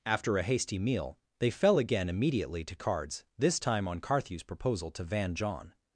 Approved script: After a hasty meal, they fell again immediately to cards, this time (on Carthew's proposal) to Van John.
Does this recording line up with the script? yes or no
yes